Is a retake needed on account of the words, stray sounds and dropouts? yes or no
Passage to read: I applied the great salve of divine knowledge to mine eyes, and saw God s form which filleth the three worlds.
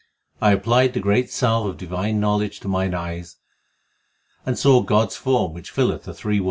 no